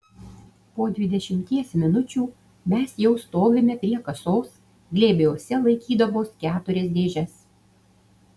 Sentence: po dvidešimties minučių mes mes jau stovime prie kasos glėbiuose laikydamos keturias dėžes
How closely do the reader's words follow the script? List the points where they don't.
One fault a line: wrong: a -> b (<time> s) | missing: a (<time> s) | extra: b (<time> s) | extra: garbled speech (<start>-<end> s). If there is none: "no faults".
missing: mes (2.9 s)